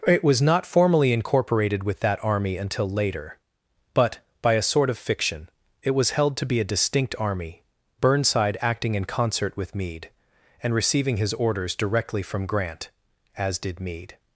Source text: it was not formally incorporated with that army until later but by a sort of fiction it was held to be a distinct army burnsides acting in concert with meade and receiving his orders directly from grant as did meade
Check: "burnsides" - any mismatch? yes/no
yes